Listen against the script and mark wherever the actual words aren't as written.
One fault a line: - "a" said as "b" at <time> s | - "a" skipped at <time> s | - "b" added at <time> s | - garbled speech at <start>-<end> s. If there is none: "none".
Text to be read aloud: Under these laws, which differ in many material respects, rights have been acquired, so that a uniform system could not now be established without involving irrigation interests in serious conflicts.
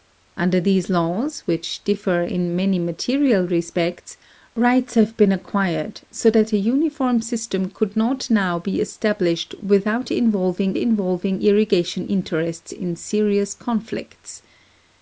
- "involving" added at 10.7 s